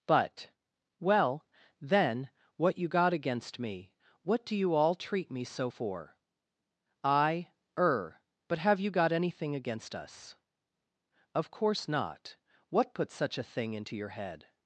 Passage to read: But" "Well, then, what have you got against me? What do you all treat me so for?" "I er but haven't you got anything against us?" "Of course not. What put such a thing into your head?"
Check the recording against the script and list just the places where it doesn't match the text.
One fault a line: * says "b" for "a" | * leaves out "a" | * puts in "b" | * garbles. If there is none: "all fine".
* leaves out "have"
* says "have" for "haven't"